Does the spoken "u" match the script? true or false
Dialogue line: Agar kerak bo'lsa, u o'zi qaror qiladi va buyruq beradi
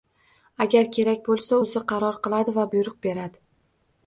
false